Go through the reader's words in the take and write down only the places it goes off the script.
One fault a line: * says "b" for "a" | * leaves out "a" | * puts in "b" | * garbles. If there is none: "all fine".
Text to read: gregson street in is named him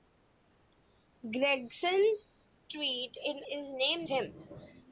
all fine